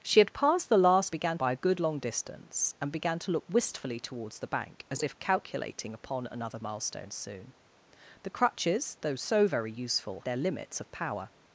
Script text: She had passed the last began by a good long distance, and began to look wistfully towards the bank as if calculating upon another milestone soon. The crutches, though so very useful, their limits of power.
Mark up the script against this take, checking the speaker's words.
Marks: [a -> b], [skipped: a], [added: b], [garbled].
She had passed the last began by a good long distance, and began to look wistfully towards the bank as if calculating upon another milestone soon. The crutches, though so very useful, their limits of power.